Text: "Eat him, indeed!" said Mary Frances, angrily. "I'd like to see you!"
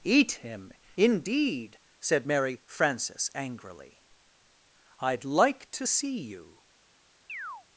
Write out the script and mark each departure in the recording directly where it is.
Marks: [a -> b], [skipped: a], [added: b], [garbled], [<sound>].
"Eat him, indeed!" said Mary Frances, angrily. "I'd like to see you!" [chirp]